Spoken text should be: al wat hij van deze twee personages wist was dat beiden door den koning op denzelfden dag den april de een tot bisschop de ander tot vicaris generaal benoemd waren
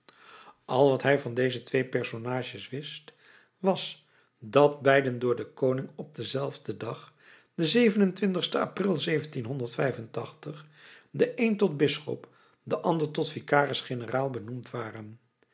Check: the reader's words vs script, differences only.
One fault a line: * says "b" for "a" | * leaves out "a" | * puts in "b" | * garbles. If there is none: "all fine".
all fine